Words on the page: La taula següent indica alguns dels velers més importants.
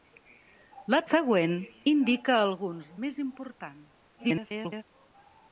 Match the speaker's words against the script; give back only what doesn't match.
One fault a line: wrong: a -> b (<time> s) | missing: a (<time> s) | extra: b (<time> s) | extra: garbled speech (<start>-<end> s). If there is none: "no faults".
missing: taula (1.0 s)
missing: dels velers (2.9 s)
extra: garbled speech (4.2-4.8 s)